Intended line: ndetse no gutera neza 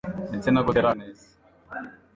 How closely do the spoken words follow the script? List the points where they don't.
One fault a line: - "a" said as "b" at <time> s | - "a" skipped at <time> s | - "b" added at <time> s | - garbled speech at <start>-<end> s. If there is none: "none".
none